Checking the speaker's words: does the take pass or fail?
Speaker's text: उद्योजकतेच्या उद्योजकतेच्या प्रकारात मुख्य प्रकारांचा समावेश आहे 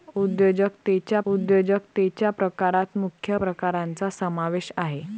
pass